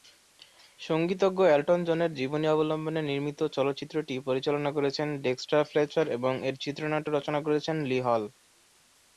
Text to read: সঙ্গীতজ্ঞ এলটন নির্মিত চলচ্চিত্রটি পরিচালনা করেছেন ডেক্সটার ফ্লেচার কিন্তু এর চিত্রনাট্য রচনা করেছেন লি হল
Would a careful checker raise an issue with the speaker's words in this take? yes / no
yes